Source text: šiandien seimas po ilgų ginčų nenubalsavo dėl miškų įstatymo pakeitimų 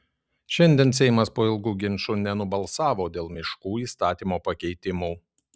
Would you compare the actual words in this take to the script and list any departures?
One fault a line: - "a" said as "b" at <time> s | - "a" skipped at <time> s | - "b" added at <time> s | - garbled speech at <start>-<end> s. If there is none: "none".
none